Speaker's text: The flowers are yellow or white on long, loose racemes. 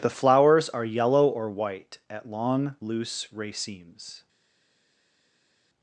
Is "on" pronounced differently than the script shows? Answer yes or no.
yes